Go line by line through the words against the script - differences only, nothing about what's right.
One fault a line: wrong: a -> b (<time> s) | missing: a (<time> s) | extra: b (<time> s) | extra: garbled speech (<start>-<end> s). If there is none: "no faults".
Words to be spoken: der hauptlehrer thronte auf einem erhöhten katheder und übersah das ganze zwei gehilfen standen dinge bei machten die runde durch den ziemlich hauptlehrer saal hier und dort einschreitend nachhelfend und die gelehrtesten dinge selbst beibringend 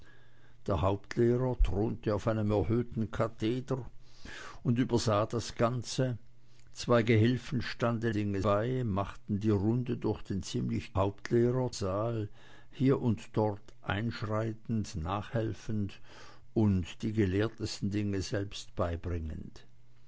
no faults